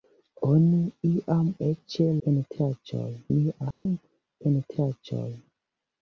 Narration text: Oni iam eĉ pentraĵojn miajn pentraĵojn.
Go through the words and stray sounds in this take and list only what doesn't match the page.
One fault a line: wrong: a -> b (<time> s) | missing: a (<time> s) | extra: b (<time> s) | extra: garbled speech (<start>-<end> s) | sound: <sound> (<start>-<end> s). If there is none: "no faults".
sound: dropout (3.7-3.9 s)